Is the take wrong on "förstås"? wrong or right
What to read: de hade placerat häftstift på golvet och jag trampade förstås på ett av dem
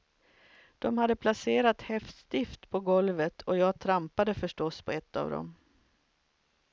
right